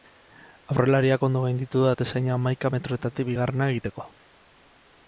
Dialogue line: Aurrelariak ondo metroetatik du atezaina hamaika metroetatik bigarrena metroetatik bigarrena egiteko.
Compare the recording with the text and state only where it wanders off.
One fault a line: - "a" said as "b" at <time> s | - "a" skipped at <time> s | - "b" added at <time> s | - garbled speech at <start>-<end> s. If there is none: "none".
- "metroetatik" said as "gainditu" at 1.4 s
- "metroetatik bigarrena" skipped at 3.7 s